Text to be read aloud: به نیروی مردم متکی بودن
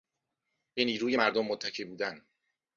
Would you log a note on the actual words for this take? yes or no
no